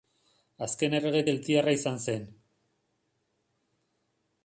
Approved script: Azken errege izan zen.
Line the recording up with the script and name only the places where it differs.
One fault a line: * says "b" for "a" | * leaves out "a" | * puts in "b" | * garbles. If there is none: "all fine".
* puts in "keltiarra"